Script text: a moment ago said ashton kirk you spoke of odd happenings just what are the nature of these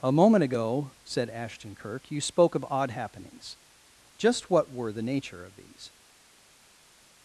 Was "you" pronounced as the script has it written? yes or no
yes